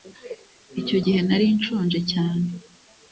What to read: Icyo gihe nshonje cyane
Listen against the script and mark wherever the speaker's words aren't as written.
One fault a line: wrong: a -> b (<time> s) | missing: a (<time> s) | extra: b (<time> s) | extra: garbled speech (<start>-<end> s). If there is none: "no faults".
extra: nari (1.3 s)